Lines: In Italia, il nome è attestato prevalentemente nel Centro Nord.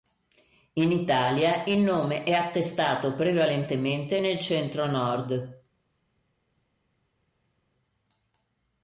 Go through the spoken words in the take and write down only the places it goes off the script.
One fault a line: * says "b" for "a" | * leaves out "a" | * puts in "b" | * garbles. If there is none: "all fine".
all fine